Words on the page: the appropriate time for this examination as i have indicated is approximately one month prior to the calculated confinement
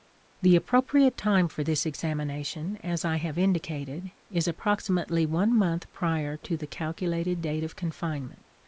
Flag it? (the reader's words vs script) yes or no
yes